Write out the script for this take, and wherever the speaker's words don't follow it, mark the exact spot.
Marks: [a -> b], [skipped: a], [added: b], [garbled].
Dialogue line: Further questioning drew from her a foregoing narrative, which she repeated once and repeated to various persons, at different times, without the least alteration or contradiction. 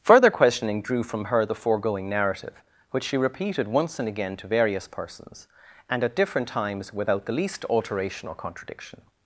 Further questioning drew from her [a -> the] foregoing narrative, which she repeated once and [repeated -> again] to various persons, [added: and] at different times, without the least alteration or contradiction.